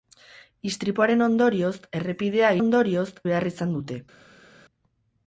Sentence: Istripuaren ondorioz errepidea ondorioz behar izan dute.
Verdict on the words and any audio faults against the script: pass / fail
pass